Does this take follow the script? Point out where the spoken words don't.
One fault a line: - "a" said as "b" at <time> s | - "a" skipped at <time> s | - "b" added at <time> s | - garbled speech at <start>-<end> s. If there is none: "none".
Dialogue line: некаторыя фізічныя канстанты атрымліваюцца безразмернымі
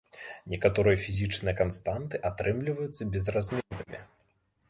none